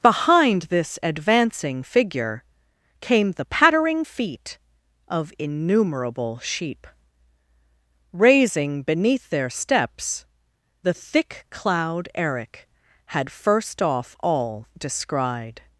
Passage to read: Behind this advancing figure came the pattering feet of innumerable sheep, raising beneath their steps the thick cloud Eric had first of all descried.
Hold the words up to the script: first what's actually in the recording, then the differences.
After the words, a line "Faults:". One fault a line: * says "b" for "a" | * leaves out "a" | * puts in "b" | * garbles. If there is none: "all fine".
Behind this advancing figure came the pattering feet of innumerable sheep, raising beneath their steps the thick cloud Eric had first off all descried.
Faults:
* says "off" for "of"